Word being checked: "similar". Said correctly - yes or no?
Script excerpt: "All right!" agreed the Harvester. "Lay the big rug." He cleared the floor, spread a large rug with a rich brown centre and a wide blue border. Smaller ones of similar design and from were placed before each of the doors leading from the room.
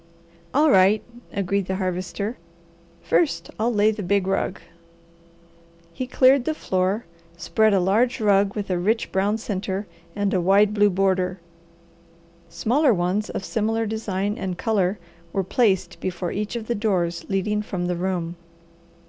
yes